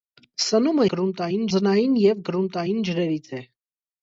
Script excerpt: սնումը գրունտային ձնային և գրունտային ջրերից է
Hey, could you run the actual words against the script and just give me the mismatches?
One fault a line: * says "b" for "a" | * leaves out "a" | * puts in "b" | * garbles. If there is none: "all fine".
all fine